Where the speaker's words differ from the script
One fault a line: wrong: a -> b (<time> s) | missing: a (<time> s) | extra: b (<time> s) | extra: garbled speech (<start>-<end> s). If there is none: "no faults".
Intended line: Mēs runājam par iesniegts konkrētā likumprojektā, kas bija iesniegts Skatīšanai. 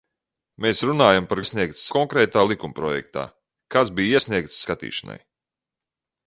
no faults